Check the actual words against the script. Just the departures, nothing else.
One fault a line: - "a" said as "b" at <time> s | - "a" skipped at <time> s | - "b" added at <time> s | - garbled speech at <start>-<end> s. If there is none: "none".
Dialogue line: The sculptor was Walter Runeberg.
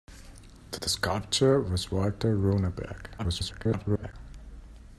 - "the" added at 0.8 s
- garbled speech at 3.2-4.1 s